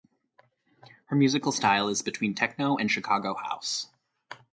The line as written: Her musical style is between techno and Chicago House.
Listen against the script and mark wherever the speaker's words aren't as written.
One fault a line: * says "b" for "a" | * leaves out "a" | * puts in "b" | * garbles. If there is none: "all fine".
all fine